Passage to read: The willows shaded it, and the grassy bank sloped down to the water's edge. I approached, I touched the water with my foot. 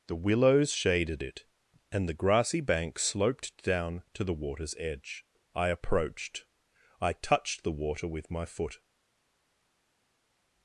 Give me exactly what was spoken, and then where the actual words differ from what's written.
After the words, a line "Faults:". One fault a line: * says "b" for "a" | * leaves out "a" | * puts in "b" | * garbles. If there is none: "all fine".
The willows shaded it, and the grassy bank sloped down to the water's edge. I approached, I touched the water with my foot.
Faults:
all fine